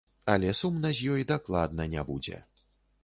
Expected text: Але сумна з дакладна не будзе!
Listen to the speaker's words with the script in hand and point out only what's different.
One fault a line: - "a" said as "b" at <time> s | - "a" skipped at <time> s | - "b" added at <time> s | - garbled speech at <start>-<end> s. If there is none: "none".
- "ёй" added at 1.2 s